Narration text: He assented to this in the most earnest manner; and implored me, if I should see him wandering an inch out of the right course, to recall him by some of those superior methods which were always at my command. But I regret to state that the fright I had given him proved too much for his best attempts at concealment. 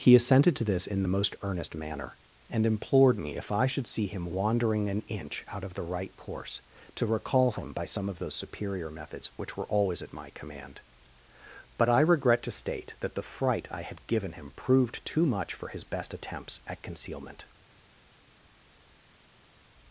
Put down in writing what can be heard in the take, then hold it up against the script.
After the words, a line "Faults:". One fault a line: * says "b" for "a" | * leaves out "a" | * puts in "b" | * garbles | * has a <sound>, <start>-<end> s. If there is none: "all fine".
He assented to this in the most earnest manner; and implored me, if I should see him wandering an inch out of the right course, to recall him by some of those superior methods which were always at my command. But I regret to state that the fright I had given him proved too much for his best attempts at concealment.
Faults:
all fine